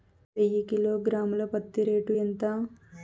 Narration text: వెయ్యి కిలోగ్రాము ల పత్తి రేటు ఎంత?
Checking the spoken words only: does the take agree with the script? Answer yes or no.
yes